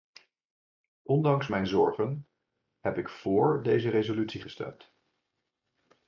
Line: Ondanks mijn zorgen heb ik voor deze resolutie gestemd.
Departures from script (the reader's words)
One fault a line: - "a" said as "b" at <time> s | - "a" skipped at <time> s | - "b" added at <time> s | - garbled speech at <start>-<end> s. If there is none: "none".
none